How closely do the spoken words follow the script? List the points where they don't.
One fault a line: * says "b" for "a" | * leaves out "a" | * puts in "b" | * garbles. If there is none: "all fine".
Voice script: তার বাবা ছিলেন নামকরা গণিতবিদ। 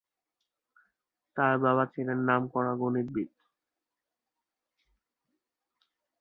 all fine